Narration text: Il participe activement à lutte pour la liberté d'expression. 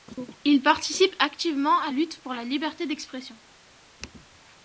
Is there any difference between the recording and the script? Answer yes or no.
no